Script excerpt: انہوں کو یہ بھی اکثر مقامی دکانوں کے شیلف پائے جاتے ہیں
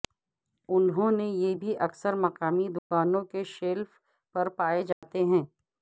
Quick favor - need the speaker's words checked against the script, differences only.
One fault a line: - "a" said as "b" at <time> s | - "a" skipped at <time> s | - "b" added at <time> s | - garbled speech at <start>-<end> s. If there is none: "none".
- "کو" said as "نے" at 1.1 s
- "پر" added at 4.3 s